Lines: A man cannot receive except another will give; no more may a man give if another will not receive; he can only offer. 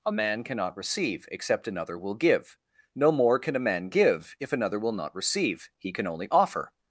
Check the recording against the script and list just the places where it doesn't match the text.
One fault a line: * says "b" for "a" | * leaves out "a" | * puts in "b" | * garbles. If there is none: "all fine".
* says "can" for "may"